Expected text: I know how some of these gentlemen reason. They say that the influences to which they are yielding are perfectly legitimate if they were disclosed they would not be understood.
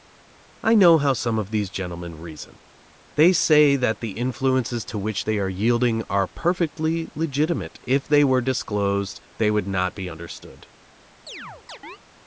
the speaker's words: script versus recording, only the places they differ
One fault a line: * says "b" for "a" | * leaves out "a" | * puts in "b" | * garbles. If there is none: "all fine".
all fine